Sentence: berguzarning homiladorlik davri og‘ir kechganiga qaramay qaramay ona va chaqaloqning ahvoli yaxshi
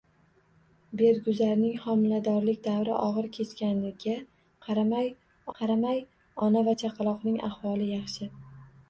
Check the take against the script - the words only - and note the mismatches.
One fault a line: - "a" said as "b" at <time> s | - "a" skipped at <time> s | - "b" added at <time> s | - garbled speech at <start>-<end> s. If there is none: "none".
none